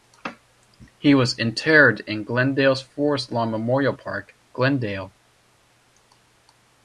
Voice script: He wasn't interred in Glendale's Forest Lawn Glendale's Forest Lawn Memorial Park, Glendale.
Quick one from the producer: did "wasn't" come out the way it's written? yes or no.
no